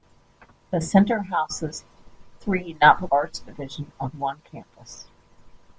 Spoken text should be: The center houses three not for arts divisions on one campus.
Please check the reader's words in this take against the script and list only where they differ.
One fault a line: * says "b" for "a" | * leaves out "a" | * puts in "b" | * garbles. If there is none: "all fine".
all fine